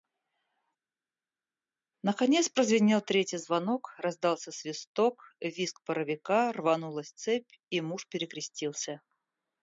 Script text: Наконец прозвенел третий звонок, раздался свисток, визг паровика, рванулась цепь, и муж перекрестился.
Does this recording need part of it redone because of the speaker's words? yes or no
no